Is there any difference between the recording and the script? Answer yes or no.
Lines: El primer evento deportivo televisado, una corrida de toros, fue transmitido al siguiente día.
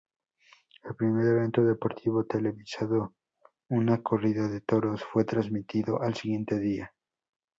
no